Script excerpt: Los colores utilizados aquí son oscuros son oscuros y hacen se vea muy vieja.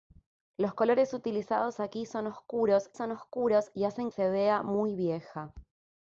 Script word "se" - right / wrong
right